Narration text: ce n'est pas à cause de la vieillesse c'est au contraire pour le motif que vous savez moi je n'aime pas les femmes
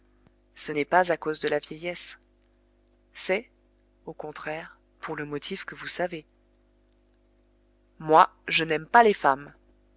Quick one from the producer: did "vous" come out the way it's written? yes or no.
yes